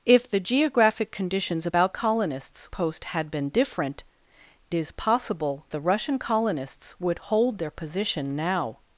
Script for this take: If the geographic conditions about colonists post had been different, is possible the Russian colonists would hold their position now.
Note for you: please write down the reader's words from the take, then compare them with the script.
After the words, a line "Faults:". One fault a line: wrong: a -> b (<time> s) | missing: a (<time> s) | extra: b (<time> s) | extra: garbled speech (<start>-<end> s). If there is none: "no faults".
If the geographic conditions about colonists post had been different, is possible the Russian colonists would hold their position now.
Faults:
no faults